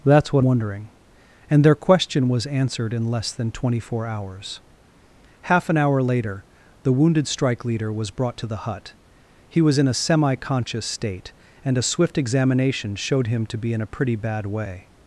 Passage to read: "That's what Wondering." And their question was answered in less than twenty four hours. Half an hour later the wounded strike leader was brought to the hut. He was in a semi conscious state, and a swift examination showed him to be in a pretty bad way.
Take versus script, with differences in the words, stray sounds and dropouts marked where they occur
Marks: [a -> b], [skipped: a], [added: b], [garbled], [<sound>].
"That's what Wondering." And their question was answered in less than twenty four hours. Half an hour later the wounded strike leader was brought to the hut. He was in a semi conscious state, and a swift examination showed him to be in a pretty bad way.